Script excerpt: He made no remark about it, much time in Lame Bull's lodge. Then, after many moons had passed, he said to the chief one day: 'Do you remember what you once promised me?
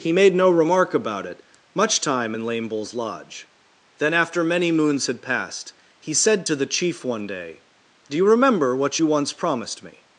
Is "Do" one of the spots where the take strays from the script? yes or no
no